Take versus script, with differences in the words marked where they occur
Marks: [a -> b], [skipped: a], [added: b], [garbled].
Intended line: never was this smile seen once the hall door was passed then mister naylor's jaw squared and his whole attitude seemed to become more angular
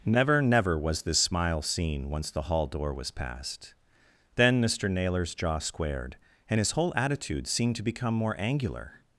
never [added: never] was this smile seen once the hall door was passed then mister naylor's jaw squared and his whole attitude seemed to become more angular